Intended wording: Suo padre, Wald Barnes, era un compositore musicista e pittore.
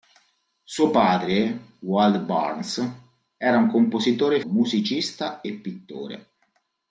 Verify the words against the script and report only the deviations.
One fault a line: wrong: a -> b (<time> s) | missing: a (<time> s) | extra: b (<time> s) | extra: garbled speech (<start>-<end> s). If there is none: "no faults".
no faults